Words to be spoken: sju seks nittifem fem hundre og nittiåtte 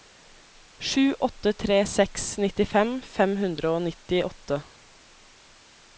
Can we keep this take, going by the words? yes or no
no